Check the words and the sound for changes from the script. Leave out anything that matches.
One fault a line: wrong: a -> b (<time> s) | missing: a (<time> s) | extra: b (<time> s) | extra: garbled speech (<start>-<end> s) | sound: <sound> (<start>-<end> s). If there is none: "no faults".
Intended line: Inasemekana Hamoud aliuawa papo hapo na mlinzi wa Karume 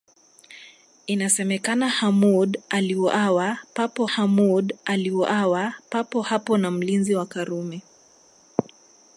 extra: Hamoud aliuawa papo (4.0 s)